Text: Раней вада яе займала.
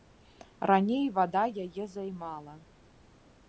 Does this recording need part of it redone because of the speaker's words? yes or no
no